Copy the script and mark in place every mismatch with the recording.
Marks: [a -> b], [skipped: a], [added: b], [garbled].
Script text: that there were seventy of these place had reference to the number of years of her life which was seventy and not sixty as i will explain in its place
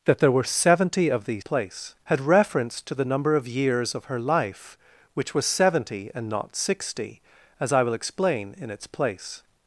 that there were seventy of these place had reference to the number of years of her life which was seventy and not sixty as i will explain in its place